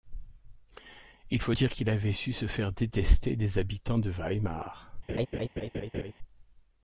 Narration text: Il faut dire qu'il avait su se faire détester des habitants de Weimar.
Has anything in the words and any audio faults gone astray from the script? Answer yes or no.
yes